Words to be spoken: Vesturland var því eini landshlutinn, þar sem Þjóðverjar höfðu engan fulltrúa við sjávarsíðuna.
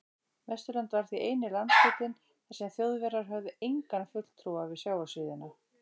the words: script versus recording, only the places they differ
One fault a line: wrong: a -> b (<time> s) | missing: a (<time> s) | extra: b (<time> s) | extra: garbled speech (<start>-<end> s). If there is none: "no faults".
no faults